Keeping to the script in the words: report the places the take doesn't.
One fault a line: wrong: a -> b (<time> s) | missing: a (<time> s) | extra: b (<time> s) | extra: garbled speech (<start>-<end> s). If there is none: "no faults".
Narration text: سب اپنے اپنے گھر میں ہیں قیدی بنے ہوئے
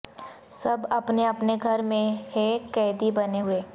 no faults